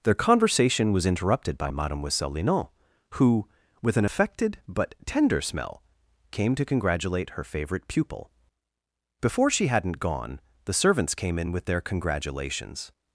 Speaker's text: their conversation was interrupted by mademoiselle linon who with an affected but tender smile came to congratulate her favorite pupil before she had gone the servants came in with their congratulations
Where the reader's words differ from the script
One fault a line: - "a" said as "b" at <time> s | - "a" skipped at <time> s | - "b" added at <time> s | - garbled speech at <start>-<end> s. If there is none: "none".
- "smile" said as "smell" at 5.4 s
- "had" said as "hadn't" at 9.7 s